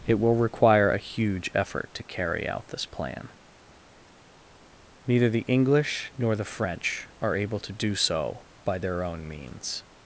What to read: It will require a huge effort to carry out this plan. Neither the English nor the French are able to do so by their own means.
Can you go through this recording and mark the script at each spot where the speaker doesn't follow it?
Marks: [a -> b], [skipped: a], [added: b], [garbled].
It will require a huge effort to carry out this plan. Neither the English nor the French are able to do so by their own means.